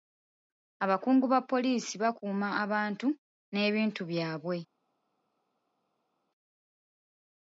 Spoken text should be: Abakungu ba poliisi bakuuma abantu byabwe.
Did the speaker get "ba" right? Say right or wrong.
right